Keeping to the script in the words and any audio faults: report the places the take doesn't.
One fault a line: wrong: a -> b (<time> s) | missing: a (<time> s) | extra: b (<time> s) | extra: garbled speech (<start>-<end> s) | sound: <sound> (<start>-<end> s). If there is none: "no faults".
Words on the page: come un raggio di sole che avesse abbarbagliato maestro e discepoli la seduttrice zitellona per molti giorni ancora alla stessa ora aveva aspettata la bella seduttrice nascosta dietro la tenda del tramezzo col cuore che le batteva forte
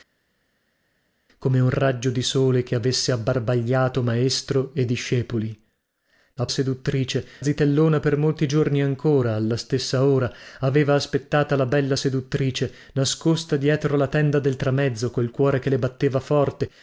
no faults